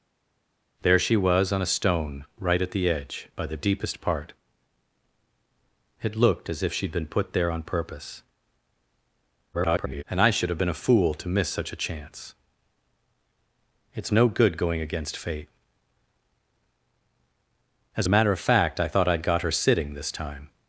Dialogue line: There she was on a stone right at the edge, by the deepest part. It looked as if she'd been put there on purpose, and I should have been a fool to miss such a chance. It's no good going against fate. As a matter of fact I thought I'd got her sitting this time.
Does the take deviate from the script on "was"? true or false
false